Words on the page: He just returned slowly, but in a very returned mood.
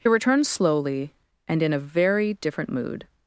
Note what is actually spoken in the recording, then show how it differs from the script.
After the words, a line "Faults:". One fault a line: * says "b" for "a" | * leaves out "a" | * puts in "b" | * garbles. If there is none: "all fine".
He returned slowly, and in a very different mood.
Faults:
* leaves out "just"
* says "and" for "but"
* says "different" for "returned"